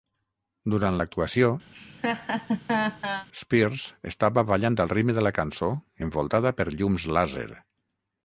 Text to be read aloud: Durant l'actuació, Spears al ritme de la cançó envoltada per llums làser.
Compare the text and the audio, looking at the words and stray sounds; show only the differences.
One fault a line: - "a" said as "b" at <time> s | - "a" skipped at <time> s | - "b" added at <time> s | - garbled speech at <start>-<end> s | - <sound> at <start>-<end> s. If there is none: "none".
- laugh at 1.7-3.3 s
- "estava ballant" added at 4.1 s